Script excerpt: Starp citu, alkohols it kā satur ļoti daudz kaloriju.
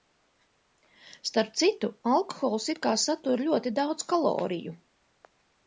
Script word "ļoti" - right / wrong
right